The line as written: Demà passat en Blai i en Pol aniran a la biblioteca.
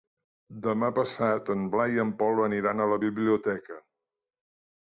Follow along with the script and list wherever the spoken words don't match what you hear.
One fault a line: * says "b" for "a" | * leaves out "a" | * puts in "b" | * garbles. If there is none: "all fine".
all fine